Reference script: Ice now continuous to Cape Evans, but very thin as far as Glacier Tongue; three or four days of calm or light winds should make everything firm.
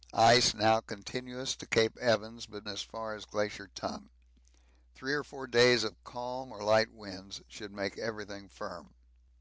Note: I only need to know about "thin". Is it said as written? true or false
false